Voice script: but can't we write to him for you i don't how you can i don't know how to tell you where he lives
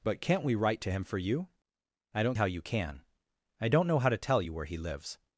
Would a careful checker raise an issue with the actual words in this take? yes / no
no